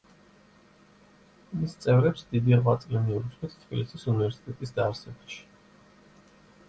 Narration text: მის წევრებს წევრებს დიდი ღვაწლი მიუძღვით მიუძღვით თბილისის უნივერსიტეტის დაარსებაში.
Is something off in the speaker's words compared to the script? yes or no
yes